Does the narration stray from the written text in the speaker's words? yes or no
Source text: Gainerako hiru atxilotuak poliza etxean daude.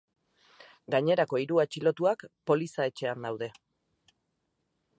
no